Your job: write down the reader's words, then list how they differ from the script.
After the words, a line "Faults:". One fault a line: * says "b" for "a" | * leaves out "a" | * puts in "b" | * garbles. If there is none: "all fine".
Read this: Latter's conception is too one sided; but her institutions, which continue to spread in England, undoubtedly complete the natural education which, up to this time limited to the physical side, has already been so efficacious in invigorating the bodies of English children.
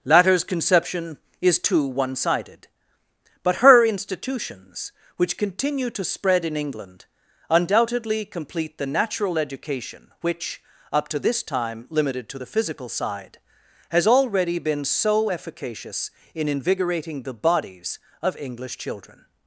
Latter's conception is too one sided; but her institutions, which continue to spread in England, undoubtedly complete the natural education which, up to this time limited to the physical side, has already been so efficacious in invigorating the bodies of English children.
Faults:
all fine